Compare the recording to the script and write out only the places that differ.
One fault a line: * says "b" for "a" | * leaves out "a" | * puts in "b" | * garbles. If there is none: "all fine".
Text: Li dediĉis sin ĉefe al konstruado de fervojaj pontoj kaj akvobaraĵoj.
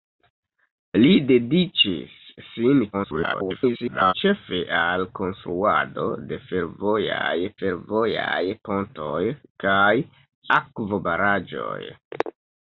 * garbles
* puts in "fervojaj"